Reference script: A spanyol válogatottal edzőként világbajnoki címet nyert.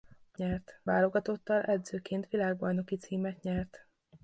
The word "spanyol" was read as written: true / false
false